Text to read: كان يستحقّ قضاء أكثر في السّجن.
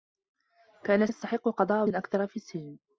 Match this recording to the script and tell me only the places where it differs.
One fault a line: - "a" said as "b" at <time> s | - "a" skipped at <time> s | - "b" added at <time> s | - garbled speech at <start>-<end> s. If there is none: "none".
none